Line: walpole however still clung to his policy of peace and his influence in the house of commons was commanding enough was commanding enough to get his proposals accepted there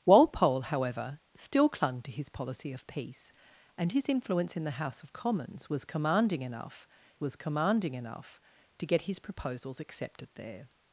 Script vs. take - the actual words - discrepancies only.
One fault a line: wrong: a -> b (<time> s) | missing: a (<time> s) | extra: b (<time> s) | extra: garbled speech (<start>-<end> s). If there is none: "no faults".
no faults